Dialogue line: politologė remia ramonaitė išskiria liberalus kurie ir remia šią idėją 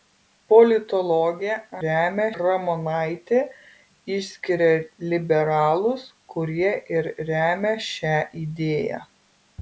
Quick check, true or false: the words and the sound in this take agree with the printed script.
true